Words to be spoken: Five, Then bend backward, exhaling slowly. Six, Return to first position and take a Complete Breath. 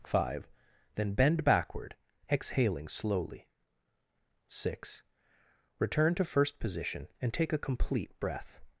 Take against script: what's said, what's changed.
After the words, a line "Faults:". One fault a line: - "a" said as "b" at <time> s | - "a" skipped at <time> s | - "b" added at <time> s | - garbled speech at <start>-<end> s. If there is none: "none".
Five, Then bend backward, exhaling slowly. Six, Return to first position and take a Complete Breath.
Faults:
none